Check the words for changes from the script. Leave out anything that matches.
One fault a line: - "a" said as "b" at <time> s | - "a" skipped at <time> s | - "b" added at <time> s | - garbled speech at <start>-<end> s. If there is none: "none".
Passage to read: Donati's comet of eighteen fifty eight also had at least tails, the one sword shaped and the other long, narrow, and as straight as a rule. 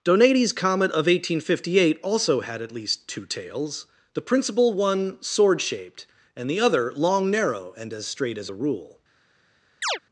- "two" added at 3.1 s
- "principal" added at 4.2 s